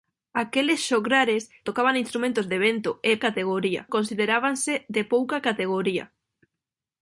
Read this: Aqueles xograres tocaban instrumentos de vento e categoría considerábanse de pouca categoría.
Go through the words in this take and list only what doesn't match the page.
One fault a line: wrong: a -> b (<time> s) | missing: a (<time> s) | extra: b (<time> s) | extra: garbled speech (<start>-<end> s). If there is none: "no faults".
no faults